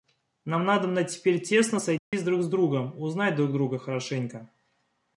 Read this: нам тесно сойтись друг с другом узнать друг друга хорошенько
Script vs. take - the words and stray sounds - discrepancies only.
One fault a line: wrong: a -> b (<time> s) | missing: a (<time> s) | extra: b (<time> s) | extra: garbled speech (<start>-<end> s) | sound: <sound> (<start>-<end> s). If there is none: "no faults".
extra: надобно теперь (0.7 s)
sound: dropout (2.0-2.1 s)